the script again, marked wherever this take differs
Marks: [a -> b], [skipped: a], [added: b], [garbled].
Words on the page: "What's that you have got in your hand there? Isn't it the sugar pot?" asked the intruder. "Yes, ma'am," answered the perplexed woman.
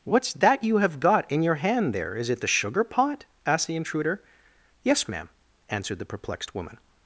"What's that you have got in your hand there? [Isn't -> Is] it the sugar pot?" asked the intruder. "Yes, ma'am," answered the perplexed woman.